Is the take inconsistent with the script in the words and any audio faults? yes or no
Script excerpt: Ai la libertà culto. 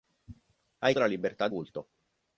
no